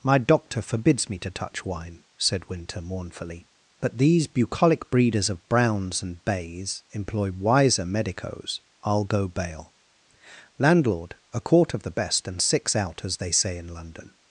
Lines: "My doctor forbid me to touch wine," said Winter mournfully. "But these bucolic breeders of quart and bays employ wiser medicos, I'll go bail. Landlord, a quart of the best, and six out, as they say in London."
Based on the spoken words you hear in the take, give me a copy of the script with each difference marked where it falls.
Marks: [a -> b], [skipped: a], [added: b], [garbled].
"My doctor [forbid -> forbids] me to touch wine," said Winter mournfully. "But these bucolic breeders of [quart -> browns] and bays employ wiser medicos, I'll go bail. Landlord, a quart of the best, and six out, as they say in London."